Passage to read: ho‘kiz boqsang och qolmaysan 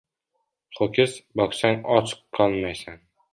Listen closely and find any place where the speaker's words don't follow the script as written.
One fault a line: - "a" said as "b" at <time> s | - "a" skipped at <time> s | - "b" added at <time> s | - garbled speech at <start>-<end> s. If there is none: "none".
none